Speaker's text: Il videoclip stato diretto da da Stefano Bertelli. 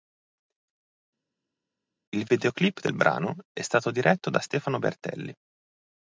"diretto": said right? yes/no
yes